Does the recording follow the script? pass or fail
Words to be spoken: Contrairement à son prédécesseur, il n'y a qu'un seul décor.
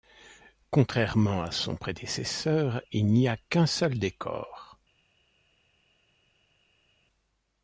pass